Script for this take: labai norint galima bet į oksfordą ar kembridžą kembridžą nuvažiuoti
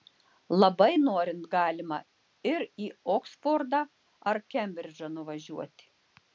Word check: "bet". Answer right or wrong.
wrong